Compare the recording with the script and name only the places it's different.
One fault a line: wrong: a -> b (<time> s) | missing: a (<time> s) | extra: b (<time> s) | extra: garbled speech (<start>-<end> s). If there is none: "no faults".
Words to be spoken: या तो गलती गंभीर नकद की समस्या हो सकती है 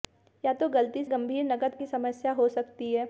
no faults